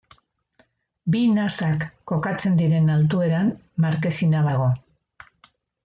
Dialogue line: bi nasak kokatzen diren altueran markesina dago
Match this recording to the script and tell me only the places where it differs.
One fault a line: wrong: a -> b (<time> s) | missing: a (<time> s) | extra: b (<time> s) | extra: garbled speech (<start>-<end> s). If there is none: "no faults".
no faults